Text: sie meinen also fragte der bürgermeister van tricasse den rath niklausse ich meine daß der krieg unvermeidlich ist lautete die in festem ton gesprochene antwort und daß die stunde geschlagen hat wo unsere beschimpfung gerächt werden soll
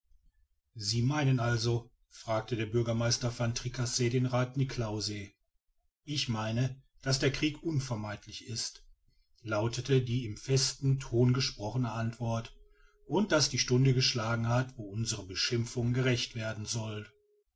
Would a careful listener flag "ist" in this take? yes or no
no